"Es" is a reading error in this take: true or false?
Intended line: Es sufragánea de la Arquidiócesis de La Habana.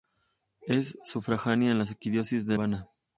false